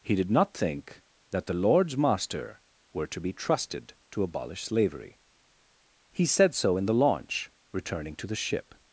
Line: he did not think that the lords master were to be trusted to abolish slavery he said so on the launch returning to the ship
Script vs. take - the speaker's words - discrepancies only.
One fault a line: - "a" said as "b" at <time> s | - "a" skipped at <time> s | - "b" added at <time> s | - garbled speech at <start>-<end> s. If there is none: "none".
- "on" said as "in" at 6.8 s